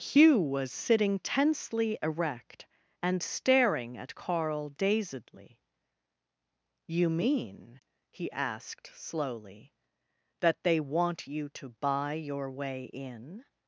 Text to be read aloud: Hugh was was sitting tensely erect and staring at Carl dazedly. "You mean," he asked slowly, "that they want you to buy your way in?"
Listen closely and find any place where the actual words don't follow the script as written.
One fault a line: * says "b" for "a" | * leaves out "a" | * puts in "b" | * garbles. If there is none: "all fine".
* leaves out "was"